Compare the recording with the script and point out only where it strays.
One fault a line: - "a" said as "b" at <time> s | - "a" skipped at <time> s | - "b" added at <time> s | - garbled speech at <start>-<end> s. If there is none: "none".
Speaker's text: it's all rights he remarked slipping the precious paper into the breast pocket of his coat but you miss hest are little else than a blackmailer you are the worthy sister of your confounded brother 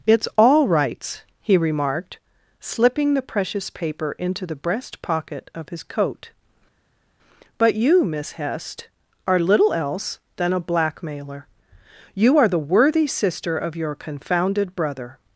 none